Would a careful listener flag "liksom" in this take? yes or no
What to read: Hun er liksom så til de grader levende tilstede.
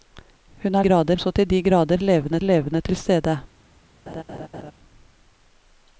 yes